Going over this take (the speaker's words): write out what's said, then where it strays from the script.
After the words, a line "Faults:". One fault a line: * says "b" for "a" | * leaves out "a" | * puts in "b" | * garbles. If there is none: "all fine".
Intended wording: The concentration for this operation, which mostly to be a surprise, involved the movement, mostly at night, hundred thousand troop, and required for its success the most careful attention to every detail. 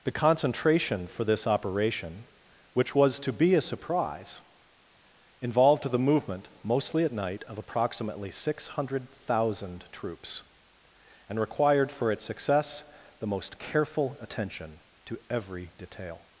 The concentration for this operation, which was to be a surprise, involved the movement, mostly at night, of approximately six hundred thousand troops, and required for its success the most careful attention to every detail.
Faults:
* says "was" for "mostly"
* puts in "of approximately six"
* says "troops" for "troop"